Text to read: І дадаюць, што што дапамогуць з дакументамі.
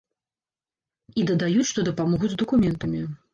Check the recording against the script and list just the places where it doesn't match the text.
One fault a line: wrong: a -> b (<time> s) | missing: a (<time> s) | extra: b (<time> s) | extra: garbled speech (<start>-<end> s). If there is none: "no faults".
missing: што (1.9 s)